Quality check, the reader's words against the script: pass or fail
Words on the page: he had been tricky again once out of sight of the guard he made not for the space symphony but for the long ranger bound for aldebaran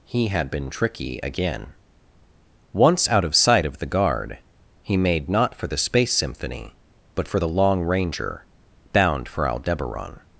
pass